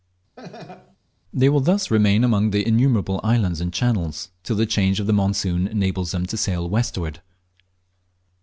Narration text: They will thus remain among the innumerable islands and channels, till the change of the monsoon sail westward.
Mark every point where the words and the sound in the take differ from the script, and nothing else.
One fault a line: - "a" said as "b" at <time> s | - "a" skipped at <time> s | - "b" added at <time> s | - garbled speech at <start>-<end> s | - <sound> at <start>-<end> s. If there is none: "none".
- laugh at 0.4-1.0 s
- "enables them to" added at 5.7 s